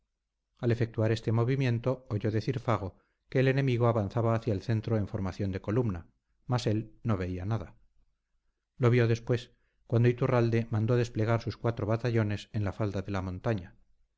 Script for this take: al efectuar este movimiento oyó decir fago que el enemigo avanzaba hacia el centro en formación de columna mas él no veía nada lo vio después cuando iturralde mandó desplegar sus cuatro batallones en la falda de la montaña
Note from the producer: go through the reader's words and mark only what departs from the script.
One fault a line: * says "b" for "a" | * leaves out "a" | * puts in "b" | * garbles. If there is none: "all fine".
all fine